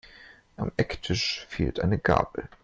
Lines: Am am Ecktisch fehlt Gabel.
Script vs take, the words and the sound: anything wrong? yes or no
yes